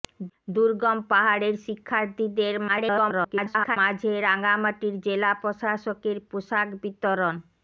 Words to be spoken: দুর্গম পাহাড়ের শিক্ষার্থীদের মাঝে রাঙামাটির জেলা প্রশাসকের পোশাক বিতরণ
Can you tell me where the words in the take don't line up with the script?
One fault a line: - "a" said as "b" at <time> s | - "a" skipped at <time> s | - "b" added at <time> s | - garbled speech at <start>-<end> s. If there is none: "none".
- garbled speech at 2.7-3.8 s